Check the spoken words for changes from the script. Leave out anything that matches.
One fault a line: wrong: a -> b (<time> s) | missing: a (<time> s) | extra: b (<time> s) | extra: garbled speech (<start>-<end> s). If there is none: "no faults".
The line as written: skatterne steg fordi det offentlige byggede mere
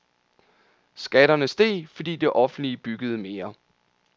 no faults